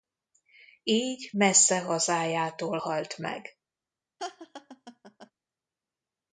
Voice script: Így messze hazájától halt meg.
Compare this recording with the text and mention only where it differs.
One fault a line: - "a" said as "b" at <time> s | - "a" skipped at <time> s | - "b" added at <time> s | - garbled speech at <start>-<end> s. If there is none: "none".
none